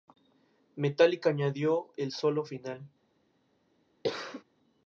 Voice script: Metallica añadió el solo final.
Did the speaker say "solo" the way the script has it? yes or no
yes